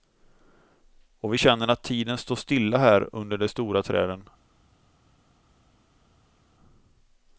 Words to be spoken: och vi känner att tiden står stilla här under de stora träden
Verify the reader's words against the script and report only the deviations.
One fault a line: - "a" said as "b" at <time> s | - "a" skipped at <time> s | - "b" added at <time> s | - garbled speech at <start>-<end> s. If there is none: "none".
none